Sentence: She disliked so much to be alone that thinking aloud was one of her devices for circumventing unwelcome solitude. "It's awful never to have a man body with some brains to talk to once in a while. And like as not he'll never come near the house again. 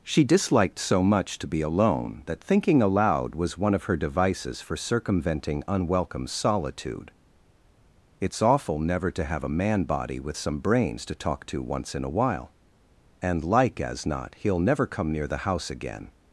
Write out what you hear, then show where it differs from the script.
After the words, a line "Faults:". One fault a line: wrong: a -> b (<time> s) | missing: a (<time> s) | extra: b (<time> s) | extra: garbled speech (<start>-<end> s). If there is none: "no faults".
She disliked so much to be alone that thinking aloud was one of her devices for circumventing unwelcome solitude. "It's awful never to have a man body with some brains to talk to once in a while. And like as not he'll never come near the house again.
Faults:
no faults